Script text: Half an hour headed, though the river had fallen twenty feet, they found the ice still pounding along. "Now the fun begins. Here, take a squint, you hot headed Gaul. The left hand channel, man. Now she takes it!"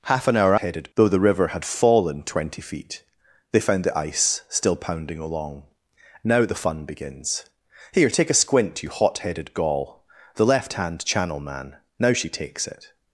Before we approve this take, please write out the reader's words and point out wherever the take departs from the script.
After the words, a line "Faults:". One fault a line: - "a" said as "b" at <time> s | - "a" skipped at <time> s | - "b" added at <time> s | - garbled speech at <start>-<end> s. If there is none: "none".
Half an hour headed, though the river had fallen twenty feet, they found the ice still pounding along. "Now the fun begins. Here, take a squint, you hot headed Gaul. The left hand channel, man. Now she takes it!"
Faults:
none